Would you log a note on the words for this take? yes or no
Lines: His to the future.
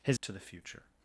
no